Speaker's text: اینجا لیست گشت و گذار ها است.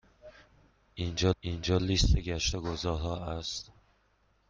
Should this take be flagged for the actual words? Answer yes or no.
yes